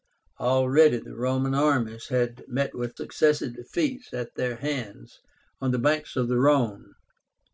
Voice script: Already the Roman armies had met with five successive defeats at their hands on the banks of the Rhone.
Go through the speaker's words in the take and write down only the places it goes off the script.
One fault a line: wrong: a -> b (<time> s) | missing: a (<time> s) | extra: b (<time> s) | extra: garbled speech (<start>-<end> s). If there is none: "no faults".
missing: five (3.0 s)